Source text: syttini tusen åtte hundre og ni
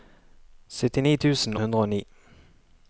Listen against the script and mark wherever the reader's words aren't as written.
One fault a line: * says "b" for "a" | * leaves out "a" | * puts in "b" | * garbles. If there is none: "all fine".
* leaves out "åtte"